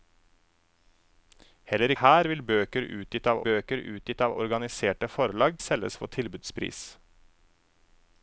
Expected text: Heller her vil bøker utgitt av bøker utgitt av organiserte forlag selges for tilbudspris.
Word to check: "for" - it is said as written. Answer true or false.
true